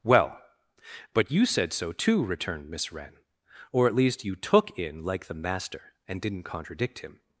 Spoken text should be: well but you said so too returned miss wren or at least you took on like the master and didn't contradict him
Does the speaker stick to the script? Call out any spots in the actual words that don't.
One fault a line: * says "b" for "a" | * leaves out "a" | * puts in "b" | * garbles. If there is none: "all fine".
* says "in" for "on"